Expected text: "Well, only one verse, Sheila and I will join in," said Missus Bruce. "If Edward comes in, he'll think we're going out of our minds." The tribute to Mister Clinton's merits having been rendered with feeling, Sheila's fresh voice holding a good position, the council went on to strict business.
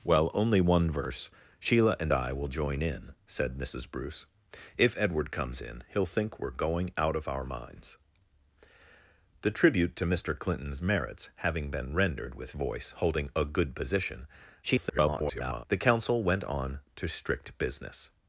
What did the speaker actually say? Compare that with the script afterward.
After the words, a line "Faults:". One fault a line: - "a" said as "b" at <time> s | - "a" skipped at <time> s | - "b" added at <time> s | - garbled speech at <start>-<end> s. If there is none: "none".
"Well, only one verse, Sheila and I will join in," said Missus Bruce. "If Edward comes in, he'll think we're going out of our minds." The tribute to Mister Clinton's merits having been rendered with voice holding a good position, [garbled] the council went on to strict business.
Faults:
- "feeling Sheila's fresh" skipped at 12.5 s
- garbled speech at 14.6-15.7 s